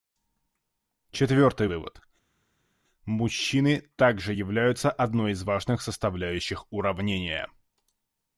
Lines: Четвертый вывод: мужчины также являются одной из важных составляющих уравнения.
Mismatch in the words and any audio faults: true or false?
false